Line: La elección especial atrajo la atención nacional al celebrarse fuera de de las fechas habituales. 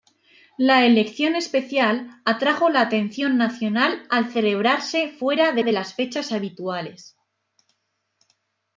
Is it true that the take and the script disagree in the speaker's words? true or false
false